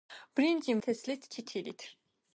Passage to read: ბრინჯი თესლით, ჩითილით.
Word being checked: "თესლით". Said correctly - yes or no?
yes